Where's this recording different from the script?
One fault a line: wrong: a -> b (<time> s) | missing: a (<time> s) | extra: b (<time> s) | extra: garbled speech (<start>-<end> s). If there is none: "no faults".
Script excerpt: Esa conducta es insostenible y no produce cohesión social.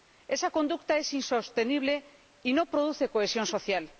no faults